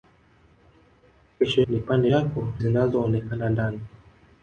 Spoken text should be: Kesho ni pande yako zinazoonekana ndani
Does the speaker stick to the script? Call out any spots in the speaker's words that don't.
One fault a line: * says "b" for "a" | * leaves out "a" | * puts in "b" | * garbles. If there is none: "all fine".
all fine